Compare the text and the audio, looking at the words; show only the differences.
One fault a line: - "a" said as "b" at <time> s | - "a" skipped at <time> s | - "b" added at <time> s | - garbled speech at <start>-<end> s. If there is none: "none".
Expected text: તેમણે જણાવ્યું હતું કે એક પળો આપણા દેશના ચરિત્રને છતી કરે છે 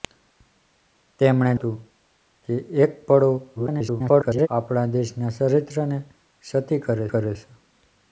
- "જણાવ્યું" skipped at 1.5 s
- garbled speech at 3.6-4.5 s
- "કરે" added at 7.1 s